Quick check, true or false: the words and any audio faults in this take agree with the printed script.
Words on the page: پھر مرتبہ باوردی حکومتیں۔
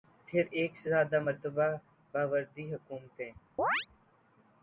false